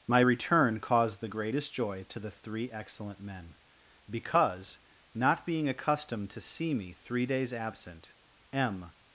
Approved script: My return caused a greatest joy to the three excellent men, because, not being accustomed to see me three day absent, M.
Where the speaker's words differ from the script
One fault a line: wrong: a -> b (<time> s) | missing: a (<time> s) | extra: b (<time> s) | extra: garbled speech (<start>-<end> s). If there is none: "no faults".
wrong: a -> the (1.2 s)
wrong: day -> days (7.3 s)